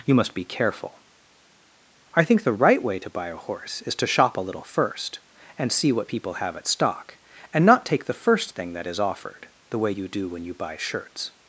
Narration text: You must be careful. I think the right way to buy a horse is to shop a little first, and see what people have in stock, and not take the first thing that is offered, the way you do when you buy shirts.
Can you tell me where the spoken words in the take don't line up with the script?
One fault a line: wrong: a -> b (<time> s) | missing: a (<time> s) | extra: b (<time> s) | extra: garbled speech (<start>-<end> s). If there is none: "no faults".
wrong: in -> at (6.5 s)